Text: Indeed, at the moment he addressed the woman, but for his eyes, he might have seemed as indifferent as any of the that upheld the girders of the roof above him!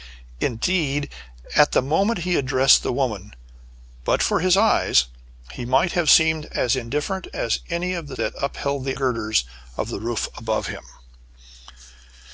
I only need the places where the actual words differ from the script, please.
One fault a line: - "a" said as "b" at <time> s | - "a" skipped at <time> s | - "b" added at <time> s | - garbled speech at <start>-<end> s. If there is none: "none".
none